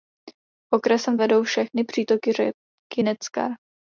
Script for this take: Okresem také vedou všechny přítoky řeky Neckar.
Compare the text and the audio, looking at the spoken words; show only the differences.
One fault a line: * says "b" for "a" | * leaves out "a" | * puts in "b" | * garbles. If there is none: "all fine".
* leaves out "také"